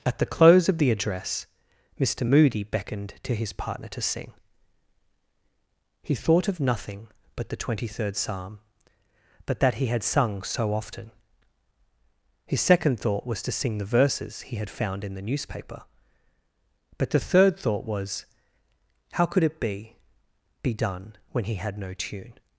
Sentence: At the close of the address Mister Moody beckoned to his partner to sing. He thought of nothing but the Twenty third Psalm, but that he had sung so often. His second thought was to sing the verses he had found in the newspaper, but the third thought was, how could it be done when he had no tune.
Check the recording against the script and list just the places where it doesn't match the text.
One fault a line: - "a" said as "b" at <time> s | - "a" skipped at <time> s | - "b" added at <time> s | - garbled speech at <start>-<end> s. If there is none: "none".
- "be" added at 20.6 s